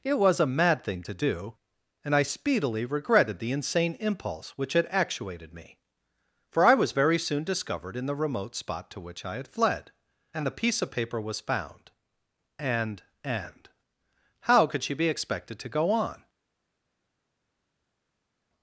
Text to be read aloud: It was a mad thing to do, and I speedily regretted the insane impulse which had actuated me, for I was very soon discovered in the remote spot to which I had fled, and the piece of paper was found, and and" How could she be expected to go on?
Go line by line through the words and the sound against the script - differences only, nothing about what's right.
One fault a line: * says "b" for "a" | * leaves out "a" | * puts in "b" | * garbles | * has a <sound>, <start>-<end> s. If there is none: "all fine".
all fine